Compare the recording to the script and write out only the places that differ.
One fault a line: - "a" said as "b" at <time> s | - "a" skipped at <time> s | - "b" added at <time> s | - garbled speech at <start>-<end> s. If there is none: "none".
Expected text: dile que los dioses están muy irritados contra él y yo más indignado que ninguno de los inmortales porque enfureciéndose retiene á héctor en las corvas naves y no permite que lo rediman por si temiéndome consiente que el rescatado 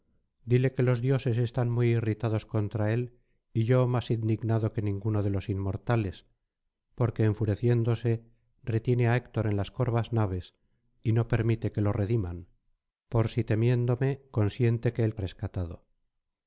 none